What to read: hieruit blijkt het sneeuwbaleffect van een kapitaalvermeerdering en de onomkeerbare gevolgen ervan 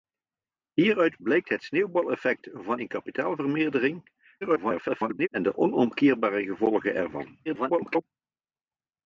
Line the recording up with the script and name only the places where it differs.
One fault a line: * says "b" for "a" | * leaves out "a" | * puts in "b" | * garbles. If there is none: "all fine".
* garbles
* garbles